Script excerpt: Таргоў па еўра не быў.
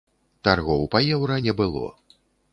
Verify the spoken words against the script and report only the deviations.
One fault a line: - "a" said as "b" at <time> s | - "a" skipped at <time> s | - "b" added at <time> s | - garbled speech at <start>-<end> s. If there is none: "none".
- "быў" said as "было" at 1.6 s